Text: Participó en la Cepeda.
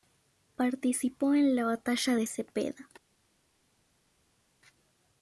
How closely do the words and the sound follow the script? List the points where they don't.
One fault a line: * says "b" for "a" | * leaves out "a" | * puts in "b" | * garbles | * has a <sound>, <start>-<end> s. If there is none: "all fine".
* puts in "batalla de"